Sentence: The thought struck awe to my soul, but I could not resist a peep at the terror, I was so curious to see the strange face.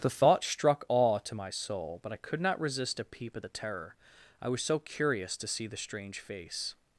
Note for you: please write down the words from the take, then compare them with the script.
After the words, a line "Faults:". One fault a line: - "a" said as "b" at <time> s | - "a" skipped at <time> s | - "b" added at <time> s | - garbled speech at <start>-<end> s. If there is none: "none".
The thought struck awe to my soul, but I could not resist a peep at the terror, I was so curious to see the strange face.
Faults:
none